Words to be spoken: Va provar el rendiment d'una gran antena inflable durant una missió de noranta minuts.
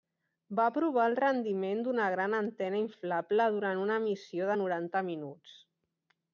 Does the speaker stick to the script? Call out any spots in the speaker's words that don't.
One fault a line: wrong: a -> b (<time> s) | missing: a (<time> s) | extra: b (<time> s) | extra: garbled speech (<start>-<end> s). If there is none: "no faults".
no faults